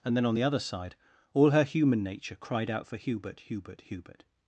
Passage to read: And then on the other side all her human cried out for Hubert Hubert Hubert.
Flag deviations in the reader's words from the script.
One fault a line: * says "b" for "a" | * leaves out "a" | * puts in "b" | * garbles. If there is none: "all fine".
* puts in "nature"